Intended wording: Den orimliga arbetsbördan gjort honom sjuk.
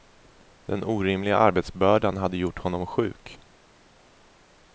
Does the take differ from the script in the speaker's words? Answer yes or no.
yes